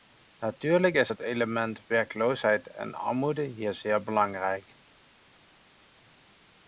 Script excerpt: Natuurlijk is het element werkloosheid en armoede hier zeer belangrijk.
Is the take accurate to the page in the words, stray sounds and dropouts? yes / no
yes